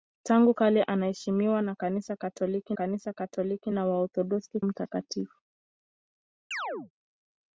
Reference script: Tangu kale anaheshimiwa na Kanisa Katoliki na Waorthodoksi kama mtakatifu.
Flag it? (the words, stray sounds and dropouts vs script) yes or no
yes